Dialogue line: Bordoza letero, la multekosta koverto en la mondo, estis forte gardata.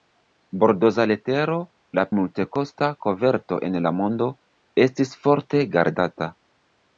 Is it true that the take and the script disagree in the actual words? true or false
false